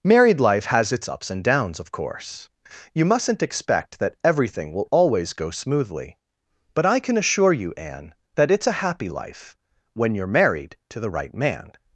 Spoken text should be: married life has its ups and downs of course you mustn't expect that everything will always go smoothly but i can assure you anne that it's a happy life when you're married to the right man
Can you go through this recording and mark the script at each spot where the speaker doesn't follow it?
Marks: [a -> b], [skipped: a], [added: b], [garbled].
married life has its ups and downs of course you mustn't expect that everything will always go smoothly but i can assure you anne that it's a happy life when you're married to the right man